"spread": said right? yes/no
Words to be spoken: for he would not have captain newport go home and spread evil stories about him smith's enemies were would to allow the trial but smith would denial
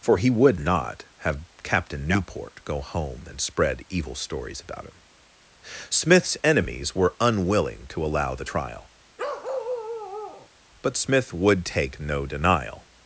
yes